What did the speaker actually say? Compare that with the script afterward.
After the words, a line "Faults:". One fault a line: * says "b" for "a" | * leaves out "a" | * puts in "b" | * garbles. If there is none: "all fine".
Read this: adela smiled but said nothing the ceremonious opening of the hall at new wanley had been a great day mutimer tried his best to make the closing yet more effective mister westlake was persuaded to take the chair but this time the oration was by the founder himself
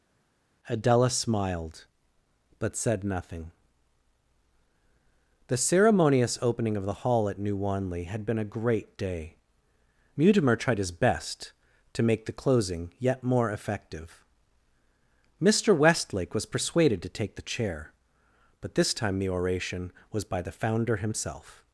adela smiled but said nothing the ceremonious opening of the hall at new wanley had been a great day mutimer tried his best to make the closing yet more effective mister westlake was persuaded to take the chair but this time the oration was by the founder himself
Faults:
all fine